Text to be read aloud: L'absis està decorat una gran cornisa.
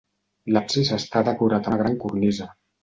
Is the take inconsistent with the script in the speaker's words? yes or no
no